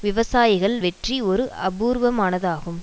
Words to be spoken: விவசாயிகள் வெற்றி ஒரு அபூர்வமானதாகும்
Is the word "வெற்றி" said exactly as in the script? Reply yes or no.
yes